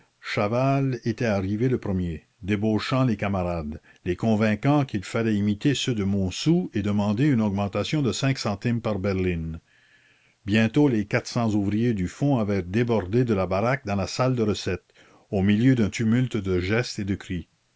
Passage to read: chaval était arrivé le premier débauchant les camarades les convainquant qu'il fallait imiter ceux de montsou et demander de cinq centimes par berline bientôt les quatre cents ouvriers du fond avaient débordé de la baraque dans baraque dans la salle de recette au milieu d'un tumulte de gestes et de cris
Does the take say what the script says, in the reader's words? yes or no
no